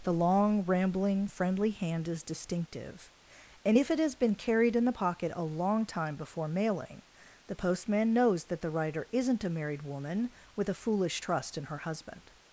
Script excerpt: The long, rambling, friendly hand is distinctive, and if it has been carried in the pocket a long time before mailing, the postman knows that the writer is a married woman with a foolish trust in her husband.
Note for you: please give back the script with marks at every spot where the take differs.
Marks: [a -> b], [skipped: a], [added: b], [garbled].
The long, rambling, friendly hand is distinctive, and if it has been carried in the pocket a long time before mailing, the postman knows that the writer [is -> isn't] a married woman with a foolish trust in her husband.